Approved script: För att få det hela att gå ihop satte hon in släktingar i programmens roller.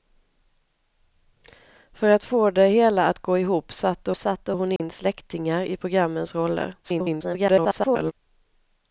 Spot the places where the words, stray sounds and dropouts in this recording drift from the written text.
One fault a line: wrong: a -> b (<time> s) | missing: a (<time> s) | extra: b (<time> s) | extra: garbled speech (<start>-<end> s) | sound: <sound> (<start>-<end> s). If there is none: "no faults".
extra: satte (4.2 s)
sound: dropout (4.8-4.8 s)
extra: garbled speech (6.8-8.1 s)